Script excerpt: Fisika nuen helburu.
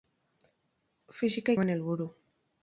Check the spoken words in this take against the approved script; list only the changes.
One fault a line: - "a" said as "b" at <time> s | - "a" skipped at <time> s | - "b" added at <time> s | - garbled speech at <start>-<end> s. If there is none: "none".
none